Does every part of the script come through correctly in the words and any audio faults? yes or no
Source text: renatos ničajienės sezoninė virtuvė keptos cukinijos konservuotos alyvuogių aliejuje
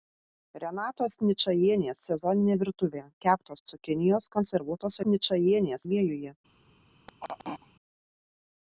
no